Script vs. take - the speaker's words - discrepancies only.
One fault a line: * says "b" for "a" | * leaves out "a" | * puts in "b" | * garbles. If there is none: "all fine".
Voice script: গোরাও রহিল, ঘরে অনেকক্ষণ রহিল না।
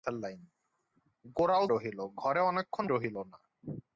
all fine